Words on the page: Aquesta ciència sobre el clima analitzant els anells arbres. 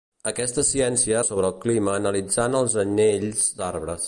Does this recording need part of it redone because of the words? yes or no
no